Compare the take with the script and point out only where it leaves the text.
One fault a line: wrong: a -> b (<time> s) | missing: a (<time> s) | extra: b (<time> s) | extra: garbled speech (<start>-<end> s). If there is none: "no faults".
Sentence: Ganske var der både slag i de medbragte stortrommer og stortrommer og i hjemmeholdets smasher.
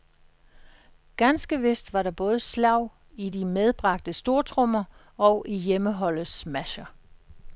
extra: vist (1.6 s)
missing: stortrommer og (5.4 s)